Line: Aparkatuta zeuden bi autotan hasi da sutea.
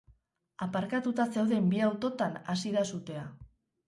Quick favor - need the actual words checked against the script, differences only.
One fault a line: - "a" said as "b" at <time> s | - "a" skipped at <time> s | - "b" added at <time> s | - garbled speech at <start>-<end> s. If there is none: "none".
none